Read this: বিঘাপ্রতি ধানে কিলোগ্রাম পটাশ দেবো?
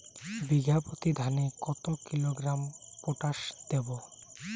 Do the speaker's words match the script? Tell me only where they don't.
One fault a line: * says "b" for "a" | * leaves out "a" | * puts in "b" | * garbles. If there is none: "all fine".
* puts in "কত"